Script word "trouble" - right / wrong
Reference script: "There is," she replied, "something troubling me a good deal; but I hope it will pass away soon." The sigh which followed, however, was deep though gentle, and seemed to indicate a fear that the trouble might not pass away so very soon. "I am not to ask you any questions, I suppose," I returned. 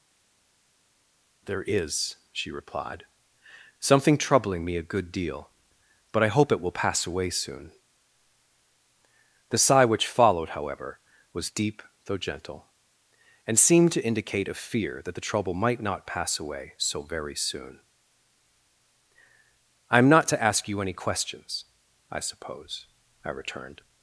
right